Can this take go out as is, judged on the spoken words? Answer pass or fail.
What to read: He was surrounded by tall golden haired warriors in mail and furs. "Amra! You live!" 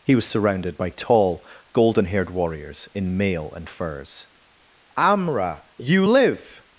pass